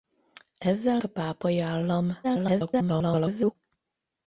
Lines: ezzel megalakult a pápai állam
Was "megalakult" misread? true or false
true